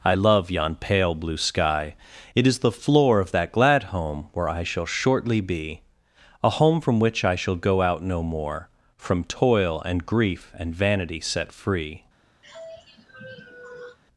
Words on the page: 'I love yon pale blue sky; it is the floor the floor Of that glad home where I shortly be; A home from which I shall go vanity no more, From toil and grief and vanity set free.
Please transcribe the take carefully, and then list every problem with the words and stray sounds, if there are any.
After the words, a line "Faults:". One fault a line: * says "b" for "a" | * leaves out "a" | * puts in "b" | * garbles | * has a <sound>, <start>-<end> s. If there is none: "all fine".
'I love yon pale blue sky; it is the floor Of that glad home where I shall shortly be; A home from which I shall go out no more, From toil and grief and vanity set free.
Faults:
* leaves out "the floor"
* puts in "shall"
* says "out" for "vanity"
* has a sigh, 12.4-14.0 s